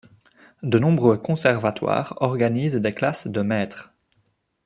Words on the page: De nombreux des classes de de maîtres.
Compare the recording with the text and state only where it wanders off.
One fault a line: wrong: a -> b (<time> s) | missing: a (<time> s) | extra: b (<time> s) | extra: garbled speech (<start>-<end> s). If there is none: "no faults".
extra: conservatoires organisent (1.2 s)
missing: de (3.4 s)